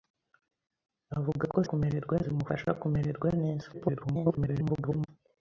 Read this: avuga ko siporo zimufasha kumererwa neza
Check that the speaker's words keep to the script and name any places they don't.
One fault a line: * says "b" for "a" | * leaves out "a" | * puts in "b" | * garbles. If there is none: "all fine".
* says "kumererwa" for "siporo"
* garbles